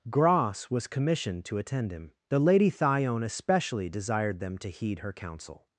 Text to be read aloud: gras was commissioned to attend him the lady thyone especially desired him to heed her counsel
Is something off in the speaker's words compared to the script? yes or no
yes